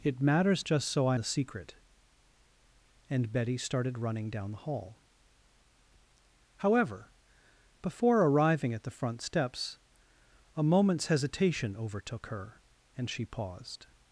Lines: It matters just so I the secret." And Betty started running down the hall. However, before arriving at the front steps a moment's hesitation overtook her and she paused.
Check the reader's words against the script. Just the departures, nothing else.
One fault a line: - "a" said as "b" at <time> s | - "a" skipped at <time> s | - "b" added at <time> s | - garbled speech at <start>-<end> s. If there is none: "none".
none